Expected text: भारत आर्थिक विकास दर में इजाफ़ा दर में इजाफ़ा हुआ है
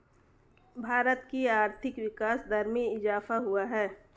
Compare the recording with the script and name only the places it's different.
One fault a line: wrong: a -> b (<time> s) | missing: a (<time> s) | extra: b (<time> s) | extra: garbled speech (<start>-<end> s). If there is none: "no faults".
extra: की (1.3 s)
missing: दर में इजाफ़ा (3.4 s)